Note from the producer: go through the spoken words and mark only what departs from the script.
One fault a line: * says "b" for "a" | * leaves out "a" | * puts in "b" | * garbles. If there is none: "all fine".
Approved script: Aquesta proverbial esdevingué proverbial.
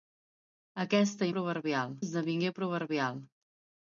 all fine